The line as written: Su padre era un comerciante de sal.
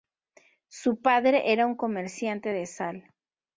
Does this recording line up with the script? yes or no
yes